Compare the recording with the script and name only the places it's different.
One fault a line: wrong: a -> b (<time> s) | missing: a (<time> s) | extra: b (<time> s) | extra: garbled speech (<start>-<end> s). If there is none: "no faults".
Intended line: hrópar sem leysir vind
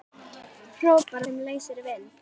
no faults